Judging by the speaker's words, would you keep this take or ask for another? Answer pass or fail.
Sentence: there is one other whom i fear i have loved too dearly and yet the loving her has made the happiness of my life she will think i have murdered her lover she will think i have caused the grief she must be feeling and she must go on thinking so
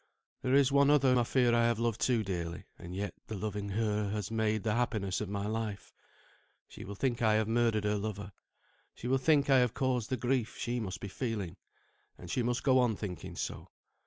fail